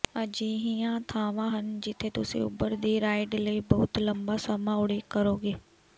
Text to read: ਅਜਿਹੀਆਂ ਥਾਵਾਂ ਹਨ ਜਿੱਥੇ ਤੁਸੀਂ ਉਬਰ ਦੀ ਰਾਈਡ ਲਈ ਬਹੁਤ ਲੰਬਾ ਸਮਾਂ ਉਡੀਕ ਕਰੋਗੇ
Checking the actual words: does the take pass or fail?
pass